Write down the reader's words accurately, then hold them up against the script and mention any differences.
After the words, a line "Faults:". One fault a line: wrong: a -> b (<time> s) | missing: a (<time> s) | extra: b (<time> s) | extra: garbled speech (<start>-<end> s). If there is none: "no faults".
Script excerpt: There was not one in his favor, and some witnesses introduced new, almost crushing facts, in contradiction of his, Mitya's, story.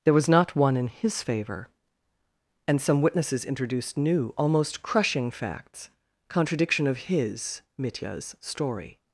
There was not one in his favor, and some witnesses introduced new, almost crushing facts, contradiction of his, Mitya's, story.
Faults:
missing: in (5.9 s)